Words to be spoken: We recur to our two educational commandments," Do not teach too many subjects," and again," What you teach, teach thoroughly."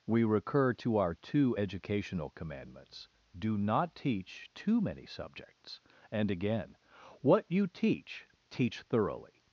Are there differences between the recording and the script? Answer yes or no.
no